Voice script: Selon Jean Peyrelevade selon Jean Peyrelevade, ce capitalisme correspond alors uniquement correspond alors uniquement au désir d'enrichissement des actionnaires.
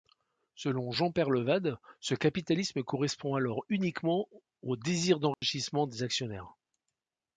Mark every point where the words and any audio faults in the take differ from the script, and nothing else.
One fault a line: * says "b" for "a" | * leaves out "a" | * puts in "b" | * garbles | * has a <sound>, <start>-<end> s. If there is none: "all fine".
* leaves out "selon Jean Peyrelevade"
* leaves out "correspond alors uniquement"
* has a dropout, 5.3-5.4 s